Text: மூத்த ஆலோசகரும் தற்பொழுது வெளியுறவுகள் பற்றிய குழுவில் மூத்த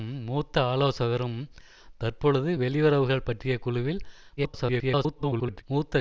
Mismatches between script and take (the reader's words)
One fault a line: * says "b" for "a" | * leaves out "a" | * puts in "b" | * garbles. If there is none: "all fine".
* garbles